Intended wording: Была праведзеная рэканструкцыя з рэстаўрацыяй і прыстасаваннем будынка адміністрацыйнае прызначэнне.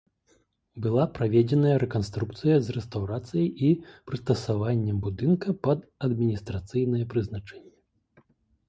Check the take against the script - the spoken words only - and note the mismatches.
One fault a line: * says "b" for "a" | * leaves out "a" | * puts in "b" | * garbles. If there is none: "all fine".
* puts in "пад"